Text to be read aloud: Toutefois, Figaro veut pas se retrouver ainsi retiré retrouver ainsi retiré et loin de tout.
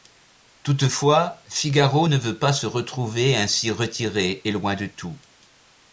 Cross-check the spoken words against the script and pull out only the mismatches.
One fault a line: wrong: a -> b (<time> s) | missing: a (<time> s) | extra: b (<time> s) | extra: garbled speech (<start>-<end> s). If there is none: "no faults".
extra: ne (2.0 s)
missing: retrouver ainsi retiré (4.4 s)